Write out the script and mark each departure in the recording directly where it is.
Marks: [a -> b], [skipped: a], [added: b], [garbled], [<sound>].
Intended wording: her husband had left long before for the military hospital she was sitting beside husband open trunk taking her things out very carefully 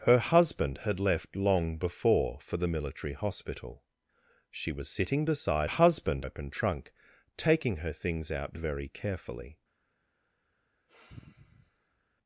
her husband had left long before for the military hospital she was sitting beside husband open trunk taking her things out very carefully [sigh]